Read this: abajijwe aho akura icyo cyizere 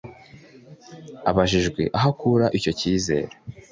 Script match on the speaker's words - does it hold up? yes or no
yes